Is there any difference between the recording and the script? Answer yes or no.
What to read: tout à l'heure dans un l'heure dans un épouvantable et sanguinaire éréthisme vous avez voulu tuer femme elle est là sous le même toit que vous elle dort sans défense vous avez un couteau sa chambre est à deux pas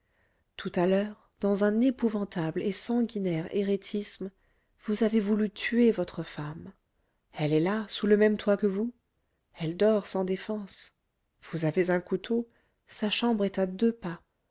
yes